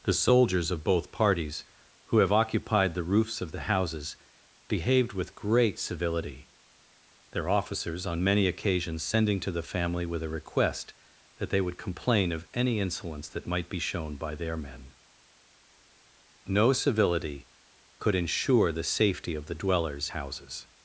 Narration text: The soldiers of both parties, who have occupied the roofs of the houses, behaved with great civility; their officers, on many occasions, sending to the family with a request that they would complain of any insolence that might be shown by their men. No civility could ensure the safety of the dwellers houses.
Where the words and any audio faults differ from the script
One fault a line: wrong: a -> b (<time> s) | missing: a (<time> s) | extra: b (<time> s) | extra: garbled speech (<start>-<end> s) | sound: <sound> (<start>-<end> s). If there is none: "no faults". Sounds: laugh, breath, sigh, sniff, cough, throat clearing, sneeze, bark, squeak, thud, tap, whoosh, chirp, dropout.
no faults